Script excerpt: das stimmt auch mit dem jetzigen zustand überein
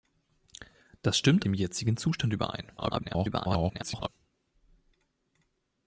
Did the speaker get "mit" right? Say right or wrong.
wrong